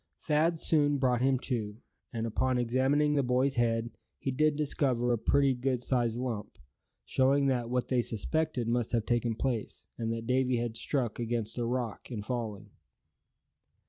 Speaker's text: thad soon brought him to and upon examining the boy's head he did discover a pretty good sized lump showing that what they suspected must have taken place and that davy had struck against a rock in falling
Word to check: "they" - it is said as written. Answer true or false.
true